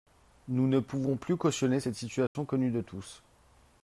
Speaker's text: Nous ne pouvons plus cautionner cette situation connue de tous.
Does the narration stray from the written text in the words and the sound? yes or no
yes